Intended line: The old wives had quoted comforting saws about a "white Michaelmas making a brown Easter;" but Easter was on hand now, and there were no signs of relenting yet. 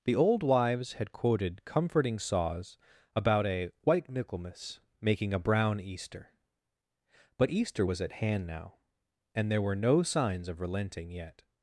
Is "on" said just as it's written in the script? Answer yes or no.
no